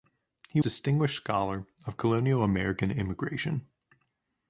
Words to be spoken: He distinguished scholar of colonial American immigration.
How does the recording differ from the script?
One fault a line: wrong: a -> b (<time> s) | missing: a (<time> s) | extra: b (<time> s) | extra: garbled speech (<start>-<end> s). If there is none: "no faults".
no faults